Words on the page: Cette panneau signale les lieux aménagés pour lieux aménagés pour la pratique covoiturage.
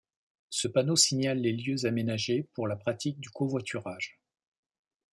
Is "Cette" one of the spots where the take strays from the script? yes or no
yes